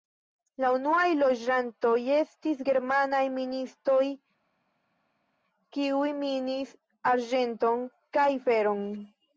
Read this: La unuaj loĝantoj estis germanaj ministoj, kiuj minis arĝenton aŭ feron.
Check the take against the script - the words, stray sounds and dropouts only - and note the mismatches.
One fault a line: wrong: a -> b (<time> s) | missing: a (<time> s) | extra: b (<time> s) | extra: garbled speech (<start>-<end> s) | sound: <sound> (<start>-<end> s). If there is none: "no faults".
wrong: aŭ -> kaj (8.2 s)